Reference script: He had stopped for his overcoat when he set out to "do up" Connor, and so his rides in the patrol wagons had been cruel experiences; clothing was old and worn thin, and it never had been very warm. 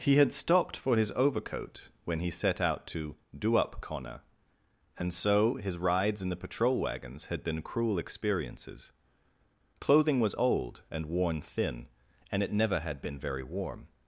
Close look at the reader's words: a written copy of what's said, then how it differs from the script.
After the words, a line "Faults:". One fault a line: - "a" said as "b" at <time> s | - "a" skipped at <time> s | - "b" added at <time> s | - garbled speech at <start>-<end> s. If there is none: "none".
He had stopped for his overcoat when he set out to "do up" Connor, and so his rides in the patrol wagons had been cruel experiences; clothing was old and worn thin, and it never had been very warm.
Faults:
none